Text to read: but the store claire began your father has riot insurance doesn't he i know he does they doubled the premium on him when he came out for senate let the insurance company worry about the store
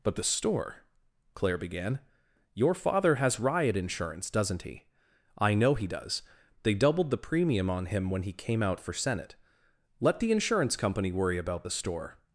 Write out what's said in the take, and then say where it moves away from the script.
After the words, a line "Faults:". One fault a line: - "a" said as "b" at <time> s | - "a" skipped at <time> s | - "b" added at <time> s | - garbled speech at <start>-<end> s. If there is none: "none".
but the store claire began your father has riot insurance doesn't he i know he does they doubled the premium on him when he came out for senate let the insurance company worry about the store
Faults:
none